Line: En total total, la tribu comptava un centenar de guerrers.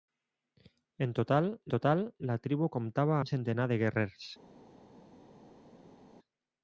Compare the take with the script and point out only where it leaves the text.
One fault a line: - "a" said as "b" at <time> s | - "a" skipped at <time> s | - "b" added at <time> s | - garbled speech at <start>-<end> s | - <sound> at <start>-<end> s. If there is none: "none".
none